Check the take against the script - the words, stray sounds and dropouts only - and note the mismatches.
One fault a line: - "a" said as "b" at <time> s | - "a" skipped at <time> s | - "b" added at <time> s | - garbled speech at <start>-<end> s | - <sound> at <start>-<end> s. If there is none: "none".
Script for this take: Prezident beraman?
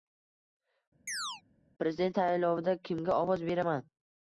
- chirp at 1.1-1.4 s
- "saylovida kimga ovoz" added at 2.2 s